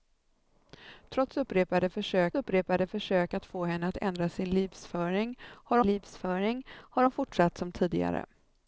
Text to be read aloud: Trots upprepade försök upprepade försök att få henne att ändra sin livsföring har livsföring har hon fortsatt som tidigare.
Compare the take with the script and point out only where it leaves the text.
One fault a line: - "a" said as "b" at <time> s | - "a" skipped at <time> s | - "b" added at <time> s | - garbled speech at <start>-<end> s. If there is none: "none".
none